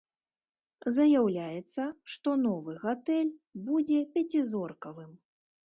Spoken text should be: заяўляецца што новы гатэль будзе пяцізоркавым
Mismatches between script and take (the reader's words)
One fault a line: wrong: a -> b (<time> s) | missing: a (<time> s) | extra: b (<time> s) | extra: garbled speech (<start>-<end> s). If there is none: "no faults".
no faults